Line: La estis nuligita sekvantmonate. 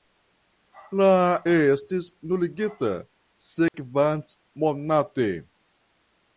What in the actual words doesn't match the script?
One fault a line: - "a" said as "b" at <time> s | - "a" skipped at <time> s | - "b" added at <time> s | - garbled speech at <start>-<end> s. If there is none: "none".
none